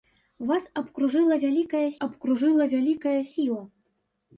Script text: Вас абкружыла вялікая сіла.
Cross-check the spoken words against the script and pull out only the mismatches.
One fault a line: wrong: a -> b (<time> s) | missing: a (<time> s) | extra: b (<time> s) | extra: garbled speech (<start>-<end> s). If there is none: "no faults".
extra: абкружыла вялікая (2.1 s)